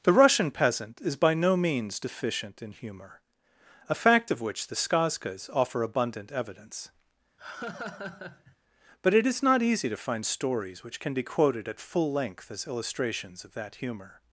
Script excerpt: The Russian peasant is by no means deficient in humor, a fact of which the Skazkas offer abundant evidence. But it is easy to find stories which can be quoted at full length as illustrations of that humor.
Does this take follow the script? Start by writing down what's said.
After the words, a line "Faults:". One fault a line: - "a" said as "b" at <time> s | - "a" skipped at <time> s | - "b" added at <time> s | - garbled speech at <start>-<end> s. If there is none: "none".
The Russian peasant is by no means deficient in humor, a fact of which the Skazkas offer abundant evidence. But it is not easy to find stories which can be quoted at full length as illustrations of that humor.
Faults:
- "not" added at 9.4 s